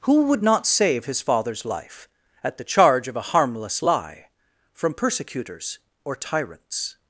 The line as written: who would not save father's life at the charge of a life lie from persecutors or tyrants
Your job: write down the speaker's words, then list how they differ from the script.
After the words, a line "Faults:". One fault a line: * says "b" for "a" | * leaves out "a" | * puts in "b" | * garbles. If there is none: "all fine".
who would not save his father's life at the charge of a harmless lie from persecutors or tyrants
Faults:
* puts in "his"
* says "harmless" for "life"